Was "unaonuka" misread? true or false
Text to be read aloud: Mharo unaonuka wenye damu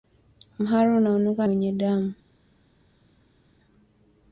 false